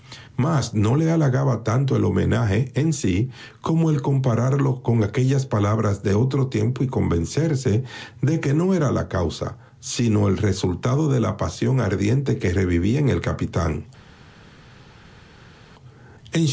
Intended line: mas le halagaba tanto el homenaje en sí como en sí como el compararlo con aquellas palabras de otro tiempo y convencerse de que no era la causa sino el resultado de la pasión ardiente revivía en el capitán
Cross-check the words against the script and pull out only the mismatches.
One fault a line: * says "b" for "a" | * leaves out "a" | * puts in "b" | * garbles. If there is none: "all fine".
* puts in "no"
* leaves out "en sí como"
* puts in "que"